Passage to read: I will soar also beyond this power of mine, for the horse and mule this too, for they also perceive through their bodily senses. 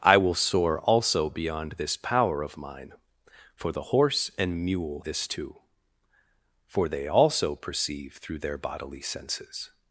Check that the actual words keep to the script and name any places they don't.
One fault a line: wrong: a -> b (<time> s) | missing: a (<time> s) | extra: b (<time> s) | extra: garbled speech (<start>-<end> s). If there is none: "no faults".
no faults